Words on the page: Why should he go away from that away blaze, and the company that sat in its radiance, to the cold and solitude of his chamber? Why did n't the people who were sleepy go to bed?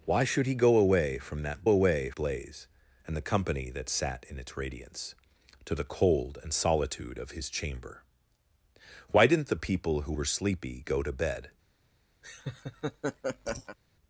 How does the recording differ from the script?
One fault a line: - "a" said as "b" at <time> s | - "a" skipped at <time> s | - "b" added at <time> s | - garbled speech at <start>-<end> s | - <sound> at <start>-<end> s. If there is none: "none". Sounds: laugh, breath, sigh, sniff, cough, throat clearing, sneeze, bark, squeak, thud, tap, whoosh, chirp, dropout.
- laugh at 12.2-13.8 s